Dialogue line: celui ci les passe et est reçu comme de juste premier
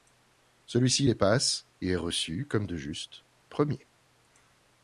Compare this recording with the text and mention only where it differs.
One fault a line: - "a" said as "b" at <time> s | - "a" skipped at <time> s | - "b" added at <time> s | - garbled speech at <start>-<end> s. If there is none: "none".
none